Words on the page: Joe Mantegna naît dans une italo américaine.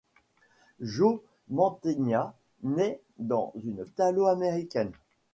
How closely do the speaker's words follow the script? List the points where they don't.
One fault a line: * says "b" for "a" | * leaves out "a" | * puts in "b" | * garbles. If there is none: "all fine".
all fine